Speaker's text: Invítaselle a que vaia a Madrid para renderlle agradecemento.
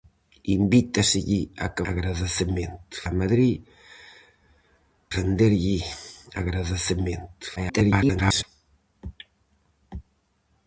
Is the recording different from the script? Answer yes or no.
yes